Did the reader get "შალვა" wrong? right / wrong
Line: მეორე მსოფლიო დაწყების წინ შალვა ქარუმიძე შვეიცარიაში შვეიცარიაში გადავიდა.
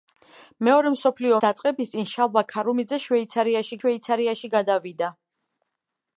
right